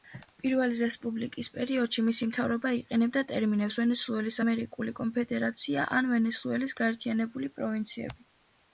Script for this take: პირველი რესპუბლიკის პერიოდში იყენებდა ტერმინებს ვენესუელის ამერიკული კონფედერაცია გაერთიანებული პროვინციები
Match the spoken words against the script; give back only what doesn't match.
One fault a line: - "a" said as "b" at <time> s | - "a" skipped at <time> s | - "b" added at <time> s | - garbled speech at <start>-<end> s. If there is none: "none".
- "მისი მთავრობა" added at 2.1 s
- "ან ვენესუელის" added at 6.0 s